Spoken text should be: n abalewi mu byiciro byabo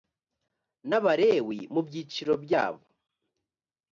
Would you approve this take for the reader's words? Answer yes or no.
yes